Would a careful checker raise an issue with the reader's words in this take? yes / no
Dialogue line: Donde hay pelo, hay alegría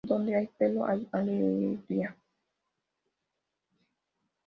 no